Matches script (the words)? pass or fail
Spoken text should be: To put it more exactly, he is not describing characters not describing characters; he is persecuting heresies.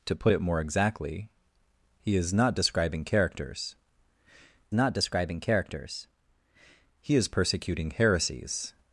pass